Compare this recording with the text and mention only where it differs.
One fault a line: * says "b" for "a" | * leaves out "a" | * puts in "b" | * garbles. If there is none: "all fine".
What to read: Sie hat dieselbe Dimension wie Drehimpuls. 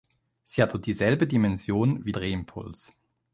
all fine